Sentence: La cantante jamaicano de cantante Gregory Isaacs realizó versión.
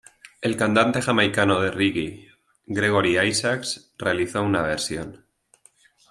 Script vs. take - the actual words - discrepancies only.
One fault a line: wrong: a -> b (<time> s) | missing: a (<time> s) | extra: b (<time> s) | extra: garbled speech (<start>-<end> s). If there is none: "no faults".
wrong: La -> El (0.4 s)
wrong: cantante -> reggae (1.7 s)
extra: una (4.4 s)